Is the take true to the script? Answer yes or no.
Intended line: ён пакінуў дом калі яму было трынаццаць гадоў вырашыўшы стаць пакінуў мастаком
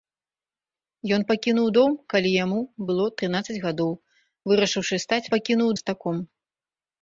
yes